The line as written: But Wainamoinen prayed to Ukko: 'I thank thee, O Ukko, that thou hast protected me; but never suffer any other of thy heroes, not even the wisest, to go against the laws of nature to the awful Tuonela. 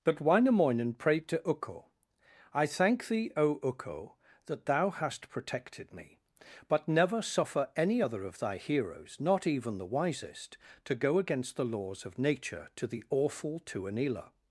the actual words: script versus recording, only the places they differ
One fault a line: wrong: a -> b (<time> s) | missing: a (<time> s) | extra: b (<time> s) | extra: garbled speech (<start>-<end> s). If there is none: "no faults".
no faults